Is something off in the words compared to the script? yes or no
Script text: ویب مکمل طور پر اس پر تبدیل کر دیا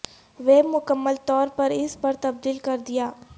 no